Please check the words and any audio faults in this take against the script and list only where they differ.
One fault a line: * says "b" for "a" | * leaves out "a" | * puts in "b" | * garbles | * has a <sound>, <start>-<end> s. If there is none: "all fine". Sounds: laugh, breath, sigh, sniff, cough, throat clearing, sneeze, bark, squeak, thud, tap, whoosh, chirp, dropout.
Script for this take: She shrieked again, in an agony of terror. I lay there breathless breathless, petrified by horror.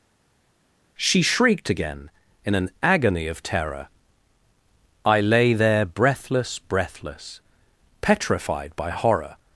all fine